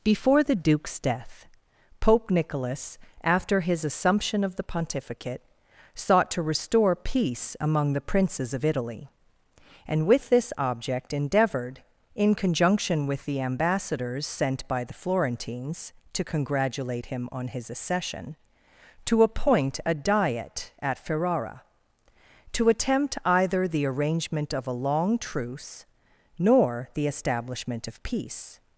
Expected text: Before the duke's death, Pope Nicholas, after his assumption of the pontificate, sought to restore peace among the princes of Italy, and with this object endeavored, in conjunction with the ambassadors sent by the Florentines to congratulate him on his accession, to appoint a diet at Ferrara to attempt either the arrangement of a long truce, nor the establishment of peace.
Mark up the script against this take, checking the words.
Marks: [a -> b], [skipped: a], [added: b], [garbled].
Before the duke's death, Pope Nicholas, after his assumption of the pontificate, sought to restore peace among the princes of Italy, and with this object endeavored, in conjunction with the ambassadors sent by the Florentines to congratulate him on his accession, to appoint a diet at Ferrara to attempt either the arrangement of a long truce, nor the establishment of peace.